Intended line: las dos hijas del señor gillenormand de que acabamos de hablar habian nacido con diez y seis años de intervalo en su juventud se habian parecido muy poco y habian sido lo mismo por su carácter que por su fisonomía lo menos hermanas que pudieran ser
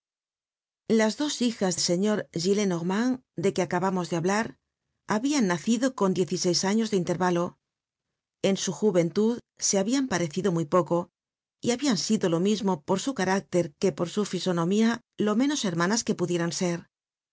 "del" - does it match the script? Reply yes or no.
no